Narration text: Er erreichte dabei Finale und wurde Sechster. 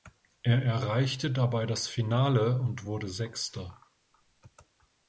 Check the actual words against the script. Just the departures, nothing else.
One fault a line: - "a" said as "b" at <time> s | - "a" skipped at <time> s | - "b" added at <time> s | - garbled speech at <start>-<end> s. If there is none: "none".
- "das" added at 1.7 s